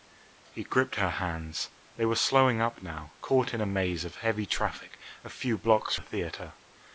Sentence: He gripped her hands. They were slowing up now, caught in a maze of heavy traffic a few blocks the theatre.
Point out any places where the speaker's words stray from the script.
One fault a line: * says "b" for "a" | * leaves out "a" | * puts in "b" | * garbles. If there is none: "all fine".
all fine